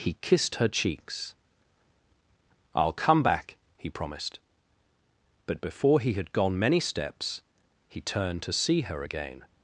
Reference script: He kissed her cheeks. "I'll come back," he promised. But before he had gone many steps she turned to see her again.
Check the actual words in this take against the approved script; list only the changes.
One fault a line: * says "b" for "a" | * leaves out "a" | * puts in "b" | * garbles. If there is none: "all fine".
* says "he" for "she"